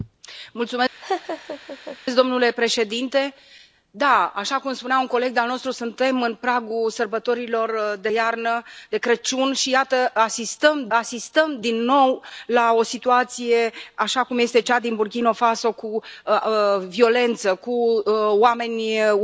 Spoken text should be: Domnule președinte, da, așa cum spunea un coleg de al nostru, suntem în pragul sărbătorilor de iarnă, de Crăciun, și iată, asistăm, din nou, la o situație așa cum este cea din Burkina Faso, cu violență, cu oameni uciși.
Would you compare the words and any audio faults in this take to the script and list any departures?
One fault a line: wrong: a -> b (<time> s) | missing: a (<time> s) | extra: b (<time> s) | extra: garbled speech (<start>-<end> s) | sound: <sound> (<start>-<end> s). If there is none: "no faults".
sound: laugh (1.0-2.0 s)
extra: asistăm (10.9 s)